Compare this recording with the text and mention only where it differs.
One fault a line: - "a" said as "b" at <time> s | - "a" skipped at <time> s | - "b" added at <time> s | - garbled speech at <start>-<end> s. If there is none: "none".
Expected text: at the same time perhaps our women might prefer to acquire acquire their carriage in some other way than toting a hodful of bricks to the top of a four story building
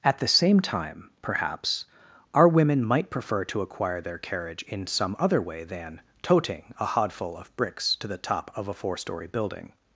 - "acquire" skipped at 4.0 s